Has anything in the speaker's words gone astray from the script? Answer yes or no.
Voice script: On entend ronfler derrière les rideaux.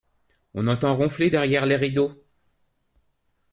no